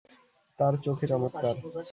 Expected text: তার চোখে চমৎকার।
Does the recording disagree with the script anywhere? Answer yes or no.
no